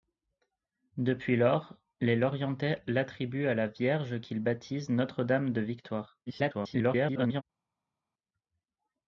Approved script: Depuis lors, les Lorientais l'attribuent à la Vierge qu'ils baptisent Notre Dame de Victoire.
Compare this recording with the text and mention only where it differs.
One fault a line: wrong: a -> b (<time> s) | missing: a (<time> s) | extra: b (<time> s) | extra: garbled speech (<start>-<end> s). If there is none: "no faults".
extra: garbled speech (6.3-7.4 s)